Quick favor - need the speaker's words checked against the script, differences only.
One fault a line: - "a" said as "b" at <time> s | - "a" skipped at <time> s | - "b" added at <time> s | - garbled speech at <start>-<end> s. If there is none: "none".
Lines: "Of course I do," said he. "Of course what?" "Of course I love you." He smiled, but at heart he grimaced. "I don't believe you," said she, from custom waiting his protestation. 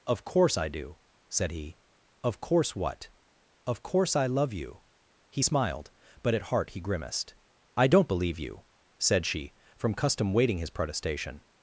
none